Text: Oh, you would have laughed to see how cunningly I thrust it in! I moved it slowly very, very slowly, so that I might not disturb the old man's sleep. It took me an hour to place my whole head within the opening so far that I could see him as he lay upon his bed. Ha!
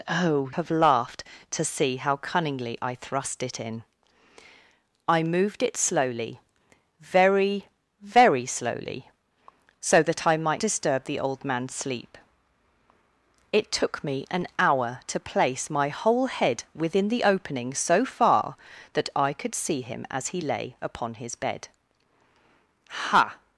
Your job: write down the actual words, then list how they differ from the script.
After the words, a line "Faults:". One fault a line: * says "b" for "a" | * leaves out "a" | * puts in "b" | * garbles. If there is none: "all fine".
Oh, have laughed to see how cunningly I thrust it in! I moved it slowly very, very slowly, so that I might disturb the old man's sleep. It took me an hour to place my whole head within the opening so far that I could see him as he lay upon his bed. Ha!
Faults:
* leaves out "you would"
* leaves out "not"